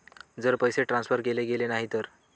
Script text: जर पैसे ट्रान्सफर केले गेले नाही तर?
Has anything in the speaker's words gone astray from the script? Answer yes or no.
no